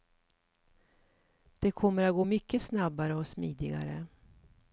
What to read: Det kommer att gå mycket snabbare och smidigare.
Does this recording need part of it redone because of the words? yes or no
no